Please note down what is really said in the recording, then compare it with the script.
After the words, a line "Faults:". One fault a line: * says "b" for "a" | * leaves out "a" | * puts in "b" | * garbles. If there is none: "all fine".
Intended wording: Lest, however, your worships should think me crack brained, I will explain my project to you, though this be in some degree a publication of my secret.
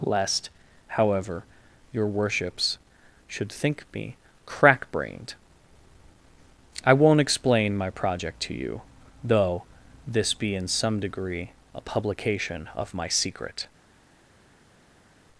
Lest, however, your worships should think me crack brained, I won't explain my project to you, though this be in some degree a publication of my secret.
Faults:
* says "won't" for "will"